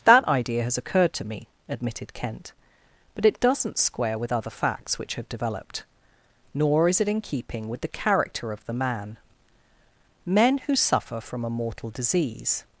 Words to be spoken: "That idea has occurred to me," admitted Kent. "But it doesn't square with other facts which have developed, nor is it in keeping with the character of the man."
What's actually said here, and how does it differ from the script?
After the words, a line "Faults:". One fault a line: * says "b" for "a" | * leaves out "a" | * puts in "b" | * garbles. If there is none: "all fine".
"That idea has occurred to me," admitted Kent. "But it doesn't square with other facts which have developed, nor is it in keeping with the character of the man." "Men who suffer from a mortal disease
Faults:
* puts in "Men who suffer from a mortal disease"